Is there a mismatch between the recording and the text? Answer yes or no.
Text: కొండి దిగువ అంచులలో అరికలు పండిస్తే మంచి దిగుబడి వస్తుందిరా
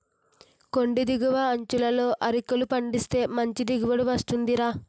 no